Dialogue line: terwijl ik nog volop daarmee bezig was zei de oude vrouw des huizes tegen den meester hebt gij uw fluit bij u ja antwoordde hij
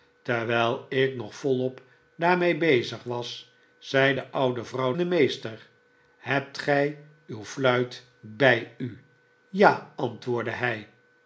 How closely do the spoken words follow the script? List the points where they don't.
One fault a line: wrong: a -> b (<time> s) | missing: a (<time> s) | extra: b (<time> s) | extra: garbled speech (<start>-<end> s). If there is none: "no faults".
missing: des huizes tegen (4.9 s)